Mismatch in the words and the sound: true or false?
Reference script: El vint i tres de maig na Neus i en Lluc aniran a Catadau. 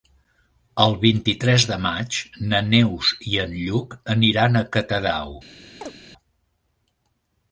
true